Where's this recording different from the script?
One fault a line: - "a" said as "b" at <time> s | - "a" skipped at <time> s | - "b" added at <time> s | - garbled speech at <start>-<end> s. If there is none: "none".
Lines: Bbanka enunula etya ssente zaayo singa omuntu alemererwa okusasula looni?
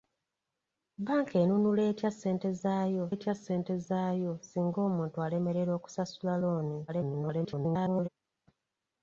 - "etya ssente zaayo" added at 3.1 s
- garbled speech at 6.9-8.1 s